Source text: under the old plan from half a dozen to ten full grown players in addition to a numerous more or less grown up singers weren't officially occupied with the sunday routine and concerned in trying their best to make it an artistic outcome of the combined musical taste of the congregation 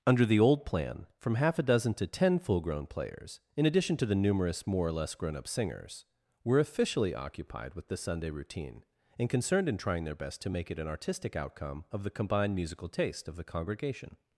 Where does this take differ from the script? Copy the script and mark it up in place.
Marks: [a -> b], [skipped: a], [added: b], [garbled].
under the old plan from half a dozen to ten full grown players in addition to [a -> the] numerous more or less grown up singers [weren't -> were] officially occupied with the sunday routine and concerned in trying their best to make it an artistic outcome of the combined musical taste of the congregation